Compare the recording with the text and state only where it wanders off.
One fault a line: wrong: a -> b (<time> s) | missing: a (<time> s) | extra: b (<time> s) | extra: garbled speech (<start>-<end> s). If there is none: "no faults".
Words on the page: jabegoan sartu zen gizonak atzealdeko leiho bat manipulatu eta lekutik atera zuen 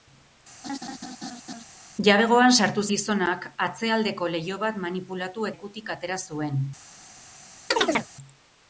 missing: zen (2.8 s)
missing: eta (5.5 s)